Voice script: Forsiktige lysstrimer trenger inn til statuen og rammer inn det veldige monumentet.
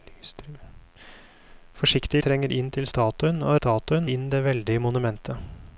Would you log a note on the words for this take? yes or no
yes